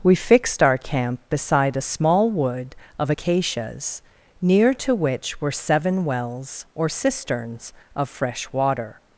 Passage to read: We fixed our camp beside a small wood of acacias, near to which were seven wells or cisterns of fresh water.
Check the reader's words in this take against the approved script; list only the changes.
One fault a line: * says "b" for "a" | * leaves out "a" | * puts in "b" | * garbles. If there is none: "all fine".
all fine